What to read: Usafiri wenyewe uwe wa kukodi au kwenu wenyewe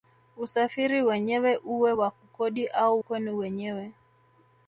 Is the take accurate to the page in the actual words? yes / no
yes